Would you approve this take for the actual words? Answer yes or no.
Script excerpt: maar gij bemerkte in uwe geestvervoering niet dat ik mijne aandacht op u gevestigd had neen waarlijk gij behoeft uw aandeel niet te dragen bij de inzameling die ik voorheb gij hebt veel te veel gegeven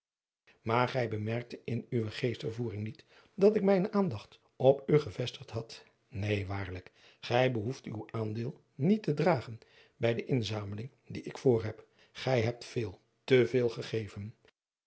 yes